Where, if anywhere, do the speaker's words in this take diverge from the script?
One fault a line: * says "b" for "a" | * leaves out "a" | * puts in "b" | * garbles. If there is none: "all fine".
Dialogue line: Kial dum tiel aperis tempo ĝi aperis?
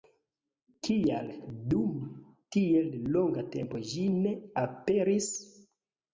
* says "longa" for "aperis"
* puts in "ne"